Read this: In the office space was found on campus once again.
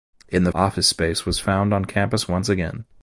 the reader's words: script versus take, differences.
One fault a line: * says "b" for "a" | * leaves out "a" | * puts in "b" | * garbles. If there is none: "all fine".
all fine